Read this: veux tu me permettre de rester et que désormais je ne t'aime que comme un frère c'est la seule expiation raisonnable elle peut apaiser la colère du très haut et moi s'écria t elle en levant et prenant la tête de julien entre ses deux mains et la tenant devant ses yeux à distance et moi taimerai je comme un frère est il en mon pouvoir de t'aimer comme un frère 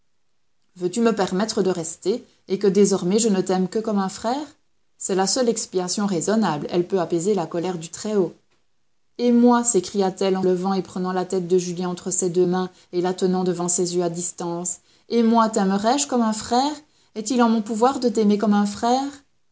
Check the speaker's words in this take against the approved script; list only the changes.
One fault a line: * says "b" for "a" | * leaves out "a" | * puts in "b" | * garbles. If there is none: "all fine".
all fine